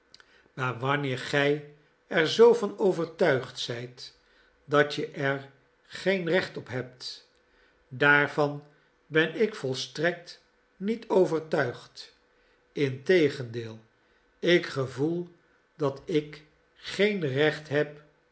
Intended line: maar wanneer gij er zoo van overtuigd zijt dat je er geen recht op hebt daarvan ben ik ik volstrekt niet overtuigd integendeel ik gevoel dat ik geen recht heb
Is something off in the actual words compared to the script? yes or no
yes